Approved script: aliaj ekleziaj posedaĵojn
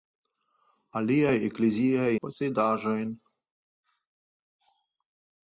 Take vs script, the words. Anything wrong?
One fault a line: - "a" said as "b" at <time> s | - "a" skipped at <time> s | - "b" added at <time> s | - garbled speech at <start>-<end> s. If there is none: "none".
none